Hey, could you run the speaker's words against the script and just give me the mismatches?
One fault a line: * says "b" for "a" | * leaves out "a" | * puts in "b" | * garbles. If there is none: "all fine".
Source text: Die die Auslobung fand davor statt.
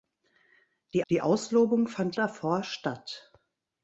all fine